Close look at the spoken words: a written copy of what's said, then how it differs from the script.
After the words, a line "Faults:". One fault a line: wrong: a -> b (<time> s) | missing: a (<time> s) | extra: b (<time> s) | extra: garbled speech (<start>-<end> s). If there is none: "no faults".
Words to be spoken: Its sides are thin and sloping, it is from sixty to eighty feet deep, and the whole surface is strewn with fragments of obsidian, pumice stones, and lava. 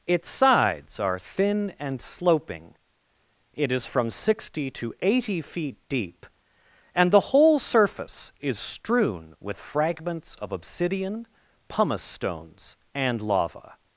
Its sides are thin and sloping, it is from sixty to eighty feet deep, and the whole surface is strewn with fragments of obsidian, pumice stones, and lava.
Faults:
no faults